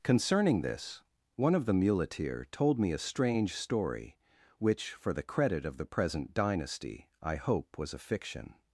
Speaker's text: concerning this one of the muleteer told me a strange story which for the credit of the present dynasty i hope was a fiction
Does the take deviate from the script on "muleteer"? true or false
false